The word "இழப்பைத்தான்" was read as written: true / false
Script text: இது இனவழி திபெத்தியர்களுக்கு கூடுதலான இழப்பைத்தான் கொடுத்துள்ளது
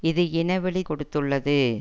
false